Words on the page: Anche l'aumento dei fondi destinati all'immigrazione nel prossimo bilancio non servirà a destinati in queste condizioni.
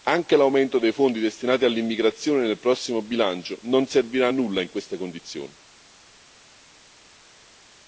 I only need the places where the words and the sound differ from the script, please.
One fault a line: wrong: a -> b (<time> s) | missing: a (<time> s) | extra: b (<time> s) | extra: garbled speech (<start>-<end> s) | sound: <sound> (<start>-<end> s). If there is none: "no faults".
wrong: destinati -> nulla (4.3 s)